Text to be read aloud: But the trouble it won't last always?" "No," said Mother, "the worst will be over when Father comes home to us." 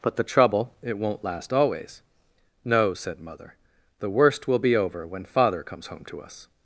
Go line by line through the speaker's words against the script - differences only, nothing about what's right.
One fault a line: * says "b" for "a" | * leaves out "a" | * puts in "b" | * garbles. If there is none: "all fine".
all fine